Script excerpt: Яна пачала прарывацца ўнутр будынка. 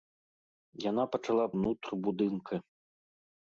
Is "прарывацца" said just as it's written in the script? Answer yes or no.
no